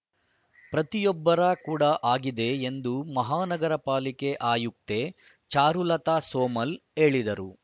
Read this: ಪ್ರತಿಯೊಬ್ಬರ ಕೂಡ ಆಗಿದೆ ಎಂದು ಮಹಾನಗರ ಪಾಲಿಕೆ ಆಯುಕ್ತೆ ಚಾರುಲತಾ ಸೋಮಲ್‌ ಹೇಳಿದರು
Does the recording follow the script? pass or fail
pass